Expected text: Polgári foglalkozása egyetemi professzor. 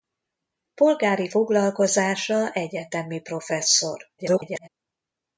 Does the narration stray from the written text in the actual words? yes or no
yes